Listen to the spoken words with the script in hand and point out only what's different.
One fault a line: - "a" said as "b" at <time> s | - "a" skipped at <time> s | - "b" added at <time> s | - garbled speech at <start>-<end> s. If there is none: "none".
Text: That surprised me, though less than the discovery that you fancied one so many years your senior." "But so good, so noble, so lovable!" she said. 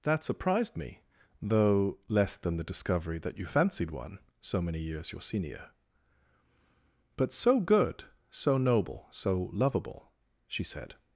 none